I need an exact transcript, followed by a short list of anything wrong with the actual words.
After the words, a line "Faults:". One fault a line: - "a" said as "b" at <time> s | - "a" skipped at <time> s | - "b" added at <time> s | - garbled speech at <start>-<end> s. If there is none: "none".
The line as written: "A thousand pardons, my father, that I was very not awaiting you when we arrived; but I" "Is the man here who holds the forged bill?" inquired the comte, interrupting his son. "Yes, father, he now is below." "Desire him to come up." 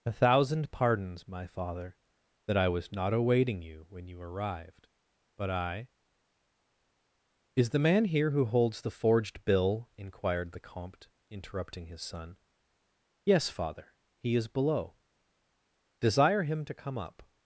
"A thousand pardons, my father, that I was not awaiting you when you arrived; but I" "Is the man here who holds the forged bill?" inquired the comte, interrupting his son. "Yes, father, he is below." "Desire him to come up."
Faults:
- "very" skipped at 2.9 s
- "we" said as "you" at 4.1 s
- "now" skipped at 14.3 s